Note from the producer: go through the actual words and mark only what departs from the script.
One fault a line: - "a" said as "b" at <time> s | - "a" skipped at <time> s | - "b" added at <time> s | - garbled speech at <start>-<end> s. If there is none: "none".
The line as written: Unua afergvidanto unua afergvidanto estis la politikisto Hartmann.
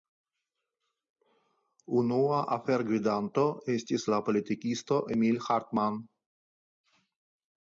- "unua afergvidanto" skipped at 3.4 s
- "Emil" added at 5.2 s